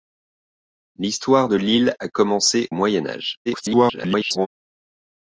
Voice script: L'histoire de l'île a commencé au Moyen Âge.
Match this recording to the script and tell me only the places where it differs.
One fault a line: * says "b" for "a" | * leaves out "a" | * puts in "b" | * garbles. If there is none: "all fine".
* leaves out "au"
* garbles